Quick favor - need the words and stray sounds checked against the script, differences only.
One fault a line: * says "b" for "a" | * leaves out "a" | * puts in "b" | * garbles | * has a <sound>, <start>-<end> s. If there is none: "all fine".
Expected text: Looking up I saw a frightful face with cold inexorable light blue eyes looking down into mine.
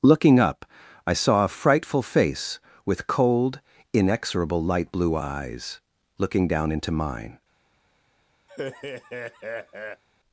* has a laugh, 8.5-10.0 s